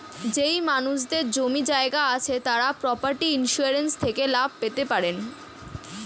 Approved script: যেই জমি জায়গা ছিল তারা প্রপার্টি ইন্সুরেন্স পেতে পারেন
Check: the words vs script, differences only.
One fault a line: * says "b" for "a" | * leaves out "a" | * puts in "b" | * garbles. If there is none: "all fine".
* puts in "মানুষদের"
* says "আছে" for "ছিল"
* puts in "থেকে লাভ"